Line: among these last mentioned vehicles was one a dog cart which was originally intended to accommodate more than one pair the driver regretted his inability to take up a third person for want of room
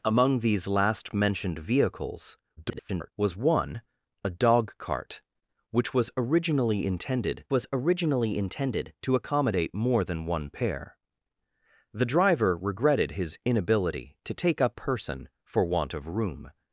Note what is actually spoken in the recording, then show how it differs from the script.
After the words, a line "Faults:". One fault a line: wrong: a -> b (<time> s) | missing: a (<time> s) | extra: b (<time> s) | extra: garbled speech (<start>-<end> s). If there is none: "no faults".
among these last mentioned vehicles [garbled] was one a dog cart which was originally intended was originally intended to accommodate more than one pair the driver regretted his inability to take up person for want of room
Faults:
extra: garbled speech (2.6-3.1 s)
extra: was originally intended (7.5 s)
missing: a third (14.8 s)